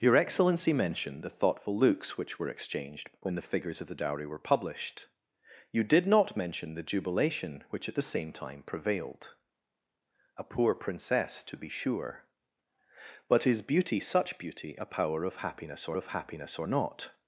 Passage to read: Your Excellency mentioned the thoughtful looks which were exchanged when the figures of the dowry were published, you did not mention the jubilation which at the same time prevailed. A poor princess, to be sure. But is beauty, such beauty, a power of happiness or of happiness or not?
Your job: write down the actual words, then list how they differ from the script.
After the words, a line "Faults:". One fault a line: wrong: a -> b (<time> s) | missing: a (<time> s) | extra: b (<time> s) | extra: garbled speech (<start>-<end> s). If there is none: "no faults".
Your Excellency mentioned the thoughtful looks which were exchanged when the figures of the dowry were published, you did not mention the jubilation which at the same time prevailed. A poor princess, to be sure. But is beauty, such beauty, a power of happiness or of happiness or not?
Faults:
no faults